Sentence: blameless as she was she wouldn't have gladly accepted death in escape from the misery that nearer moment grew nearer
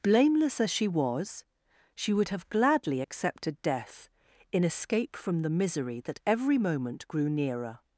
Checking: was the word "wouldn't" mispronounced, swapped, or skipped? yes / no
yes